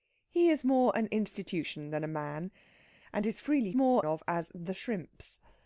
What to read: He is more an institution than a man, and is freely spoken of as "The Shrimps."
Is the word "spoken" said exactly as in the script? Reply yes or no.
no